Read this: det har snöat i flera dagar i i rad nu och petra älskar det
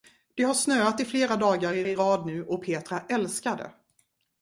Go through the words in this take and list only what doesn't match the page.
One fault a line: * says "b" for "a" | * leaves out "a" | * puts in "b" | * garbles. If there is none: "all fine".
all fine